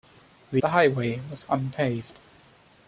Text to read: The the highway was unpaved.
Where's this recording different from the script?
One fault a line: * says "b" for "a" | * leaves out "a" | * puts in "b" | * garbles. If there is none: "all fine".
all fine